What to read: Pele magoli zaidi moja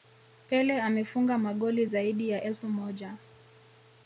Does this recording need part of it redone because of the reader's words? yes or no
yes